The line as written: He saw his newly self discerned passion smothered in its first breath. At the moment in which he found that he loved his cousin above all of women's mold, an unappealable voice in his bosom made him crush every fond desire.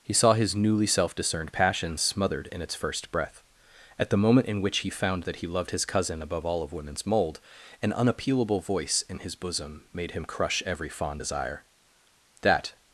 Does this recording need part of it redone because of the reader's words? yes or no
yes